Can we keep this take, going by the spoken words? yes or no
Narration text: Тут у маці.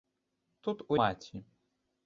yes